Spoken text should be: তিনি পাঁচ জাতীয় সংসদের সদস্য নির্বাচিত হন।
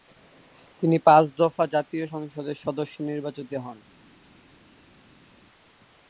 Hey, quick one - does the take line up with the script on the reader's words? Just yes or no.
no